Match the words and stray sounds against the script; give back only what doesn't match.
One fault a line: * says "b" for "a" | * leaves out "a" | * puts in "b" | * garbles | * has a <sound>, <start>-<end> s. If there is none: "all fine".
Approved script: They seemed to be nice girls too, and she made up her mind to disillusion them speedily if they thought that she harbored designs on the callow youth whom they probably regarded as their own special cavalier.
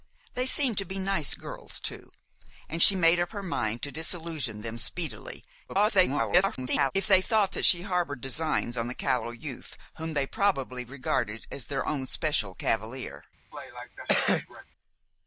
* garbles
* has a cough, 13.5-14.7 s